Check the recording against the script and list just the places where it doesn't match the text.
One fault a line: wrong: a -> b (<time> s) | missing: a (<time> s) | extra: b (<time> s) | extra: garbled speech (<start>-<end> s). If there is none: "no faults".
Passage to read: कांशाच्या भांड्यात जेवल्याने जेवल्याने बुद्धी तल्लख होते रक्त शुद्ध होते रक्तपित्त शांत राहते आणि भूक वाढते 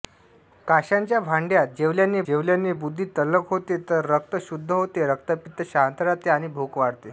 no faults